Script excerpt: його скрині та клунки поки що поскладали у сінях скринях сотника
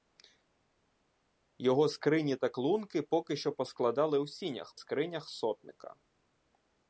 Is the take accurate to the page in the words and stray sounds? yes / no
yes